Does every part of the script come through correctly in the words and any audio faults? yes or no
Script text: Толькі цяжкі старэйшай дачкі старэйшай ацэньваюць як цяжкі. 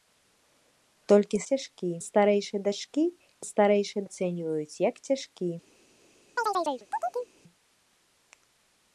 no